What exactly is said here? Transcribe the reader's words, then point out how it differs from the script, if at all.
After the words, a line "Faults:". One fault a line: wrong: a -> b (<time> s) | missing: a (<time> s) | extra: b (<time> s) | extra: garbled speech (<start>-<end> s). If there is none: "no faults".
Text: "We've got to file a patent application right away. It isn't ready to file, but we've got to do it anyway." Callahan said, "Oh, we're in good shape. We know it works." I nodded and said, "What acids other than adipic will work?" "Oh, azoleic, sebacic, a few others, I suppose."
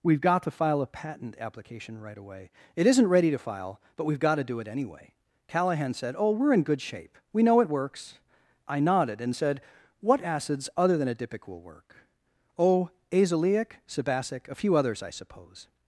"We've got to file a patent application right away. It isn't ready to file, but we've got to do it anyway." Callahan said, "Oh, we're in good shape. We know it works." I nodded and said, "What acids other than adipic will work?" "Oh, azoleic, sebacic, a few others, I suppose."
Faults:
no faults